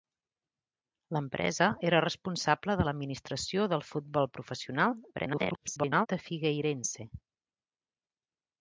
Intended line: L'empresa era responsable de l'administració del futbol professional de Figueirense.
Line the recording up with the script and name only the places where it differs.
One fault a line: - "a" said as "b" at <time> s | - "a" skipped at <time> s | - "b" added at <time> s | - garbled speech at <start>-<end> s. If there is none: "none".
- garbled speech at 5.1-6.1 s